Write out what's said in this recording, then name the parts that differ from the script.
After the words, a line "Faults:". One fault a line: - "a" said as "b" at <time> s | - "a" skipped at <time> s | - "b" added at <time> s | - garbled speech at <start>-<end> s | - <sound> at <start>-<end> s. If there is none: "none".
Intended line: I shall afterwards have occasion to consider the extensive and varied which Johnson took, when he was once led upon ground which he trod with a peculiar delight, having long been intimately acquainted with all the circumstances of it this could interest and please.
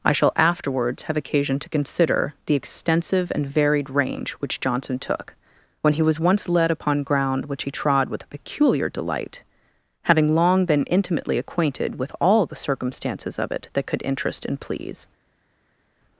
I shall afterwards have occasion to consider the extensive and varied range which Johnson took, when he was once led upon ground which he trod with a peculiar delight, having long been intimately acquainted with all the circumstances of it that could interest and please.
Faults:
- "range" added at 3.9 s
- "this" said as "that" at 13.7 s